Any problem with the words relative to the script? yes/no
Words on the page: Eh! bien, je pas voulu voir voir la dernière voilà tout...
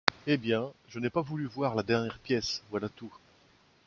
yes